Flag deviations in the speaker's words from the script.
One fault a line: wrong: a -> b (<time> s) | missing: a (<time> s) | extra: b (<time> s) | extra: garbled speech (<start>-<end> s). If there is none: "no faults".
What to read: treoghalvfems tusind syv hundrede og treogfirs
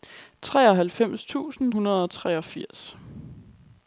missing: syv (1.7 s)